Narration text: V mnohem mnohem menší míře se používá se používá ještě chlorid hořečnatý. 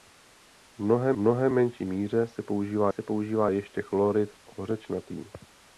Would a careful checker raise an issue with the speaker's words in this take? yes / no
no